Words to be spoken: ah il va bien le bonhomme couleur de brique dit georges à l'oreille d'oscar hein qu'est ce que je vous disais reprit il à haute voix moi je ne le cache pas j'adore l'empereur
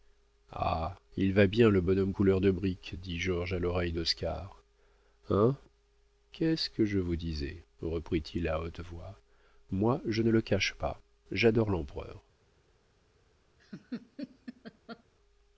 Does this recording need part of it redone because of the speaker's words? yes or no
no